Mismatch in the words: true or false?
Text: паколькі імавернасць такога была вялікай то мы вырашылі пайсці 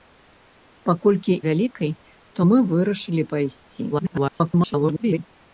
true